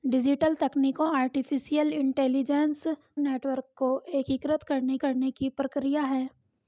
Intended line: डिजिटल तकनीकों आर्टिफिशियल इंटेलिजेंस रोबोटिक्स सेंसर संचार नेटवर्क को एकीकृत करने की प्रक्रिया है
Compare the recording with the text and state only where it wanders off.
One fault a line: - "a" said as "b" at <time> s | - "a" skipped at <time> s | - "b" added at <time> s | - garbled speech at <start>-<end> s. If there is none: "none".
- "रोबोटिक्स सेंसर संचार" skipped at 2.8 s
- "करने" added at 5.0 s